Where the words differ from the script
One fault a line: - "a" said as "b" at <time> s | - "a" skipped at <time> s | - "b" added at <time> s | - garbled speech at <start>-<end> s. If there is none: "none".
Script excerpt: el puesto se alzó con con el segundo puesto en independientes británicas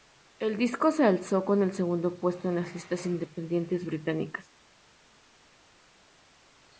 - "puesto" said as "disco" at 0.6 s
- "con" skipped at 1.6 s
- "las listas" added at 2.5 s